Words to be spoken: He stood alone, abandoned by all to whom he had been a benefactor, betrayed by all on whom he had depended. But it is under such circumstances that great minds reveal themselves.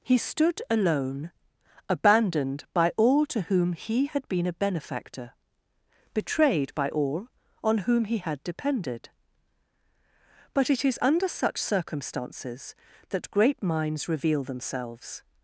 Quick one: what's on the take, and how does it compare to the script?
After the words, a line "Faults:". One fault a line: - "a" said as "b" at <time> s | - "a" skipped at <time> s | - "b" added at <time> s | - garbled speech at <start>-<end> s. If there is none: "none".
He stood alone, abandoned by all to whom he had been a benefactor, betrayed by all on whom he had depended. But it is under such circumstances that great minds reveal themselves.
Faults:
none